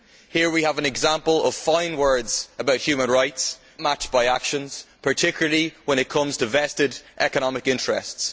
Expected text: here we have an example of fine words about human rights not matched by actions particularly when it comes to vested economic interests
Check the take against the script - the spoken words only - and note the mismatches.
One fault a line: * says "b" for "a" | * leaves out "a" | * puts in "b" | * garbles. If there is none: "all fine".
* leaves out "not"